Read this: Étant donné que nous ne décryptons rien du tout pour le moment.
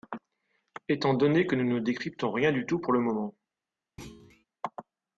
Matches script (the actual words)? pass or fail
pass